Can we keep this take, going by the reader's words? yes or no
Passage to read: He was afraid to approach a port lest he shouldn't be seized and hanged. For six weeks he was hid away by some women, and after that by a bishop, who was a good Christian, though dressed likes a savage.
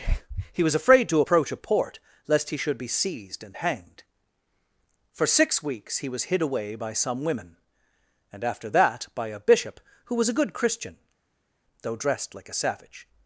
no